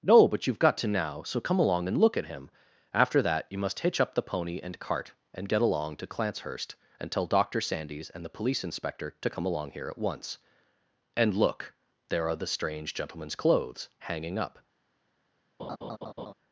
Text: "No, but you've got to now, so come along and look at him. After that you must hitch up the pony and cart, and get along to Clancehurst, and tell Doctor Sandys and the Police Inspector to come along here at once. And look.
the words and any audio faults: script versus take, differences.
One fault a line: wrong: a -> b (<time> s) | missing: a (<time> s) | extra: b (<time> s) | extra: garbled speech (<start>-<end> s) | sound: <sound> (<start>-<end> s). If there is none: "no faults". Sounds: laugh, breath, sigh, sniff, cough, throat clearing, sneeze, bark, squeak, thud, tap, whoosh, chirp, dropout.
extra: There are the strange gentleman's clothes hanging up (12.1 s)
sound: laugh (15.6-16.3 s)